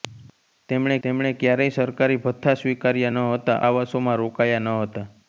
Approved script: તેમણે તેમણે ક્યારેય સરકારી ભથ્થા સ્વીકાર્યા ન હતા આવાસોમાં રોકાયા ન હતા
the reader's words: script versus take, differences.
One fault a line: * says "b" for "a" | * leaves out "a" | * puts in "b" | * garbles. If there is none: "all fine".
all fine